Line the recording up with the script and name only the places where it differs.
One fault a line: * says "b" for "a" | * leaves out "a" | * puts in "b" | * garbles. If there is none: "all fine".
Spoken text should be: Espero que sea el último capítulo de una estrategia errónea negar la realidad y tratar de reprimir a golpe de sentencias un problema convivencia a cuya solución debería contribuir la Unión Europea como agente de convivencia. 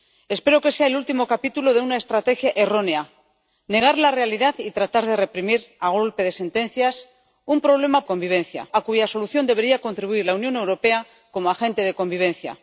all fine